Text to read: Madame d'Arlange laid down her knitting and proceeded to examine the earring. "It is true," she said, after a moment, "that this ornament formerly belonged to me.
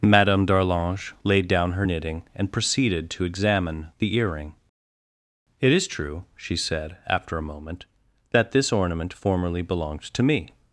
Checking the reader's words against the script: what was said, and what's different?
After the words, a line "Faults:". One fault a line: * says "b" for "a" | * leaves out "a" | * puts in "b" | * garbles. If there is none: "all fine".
Madame d'Arlange laid down her knitting and proceeded to examine the earring. "It is true," she said, after a moment, "that this ornament formerly belonged to me.
Faults:
all fine